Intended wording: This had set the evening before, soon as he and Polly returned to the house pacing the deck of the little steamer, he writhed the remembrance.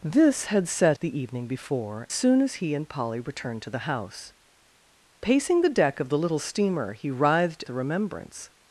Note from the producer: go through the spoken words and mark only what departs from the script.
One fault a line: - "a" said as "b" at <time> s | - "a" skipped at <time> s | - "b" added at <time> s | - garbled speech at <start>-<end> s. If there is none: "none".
none